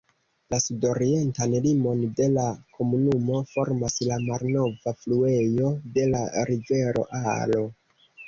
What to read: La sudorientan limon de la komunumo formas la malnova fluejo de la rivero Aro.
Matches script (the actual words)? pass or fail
pass